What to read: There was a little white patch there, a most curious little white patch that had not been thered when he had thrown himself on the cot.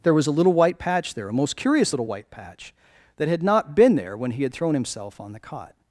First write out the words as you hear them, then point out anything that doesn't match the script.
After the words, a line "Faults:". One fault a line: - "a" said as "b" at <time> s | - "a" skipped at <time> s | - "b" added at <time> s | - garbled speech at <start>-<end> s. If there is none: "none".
There was a little white patch there, a most curious little white patch that had not been there when he had thrown himself on the cot.
Faults:
- "thered" said as "there" at 3.9 s